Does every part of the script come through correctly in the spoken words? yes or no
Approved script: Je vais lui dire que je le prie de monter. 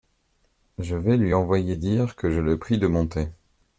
no